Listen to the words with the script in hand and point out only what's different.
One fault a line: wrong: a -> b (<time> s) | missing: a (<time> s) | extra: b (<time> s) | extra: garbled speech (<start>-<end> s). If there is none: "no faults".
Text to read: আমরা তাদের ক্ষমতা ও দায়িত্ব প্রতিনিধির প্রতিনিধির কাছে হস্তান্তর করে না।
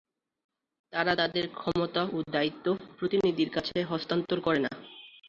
wrong: আমরা -> তারা (0.9 s)
missing: প্রতিনিধির (3.5 s)